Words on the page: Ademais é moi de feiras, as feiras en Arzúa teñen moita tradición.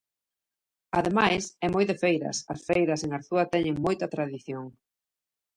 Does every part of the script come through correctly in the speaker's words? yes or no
yes